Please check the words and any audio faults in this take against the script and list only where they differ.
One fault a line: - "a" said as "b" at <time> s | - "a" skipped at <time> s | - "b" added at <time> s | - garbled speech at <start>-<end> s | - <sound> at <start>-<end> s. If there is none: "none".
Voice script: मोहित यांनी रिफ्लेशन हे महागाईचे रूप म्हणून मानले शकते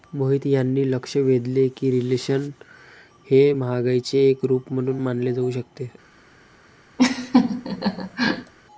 - "लक्ष वेधले की" added at 0.8 s
- "एक" added at 4.3 s
- "जाऊ" added at 5.3 s
- laugh at 7.0-8.5 s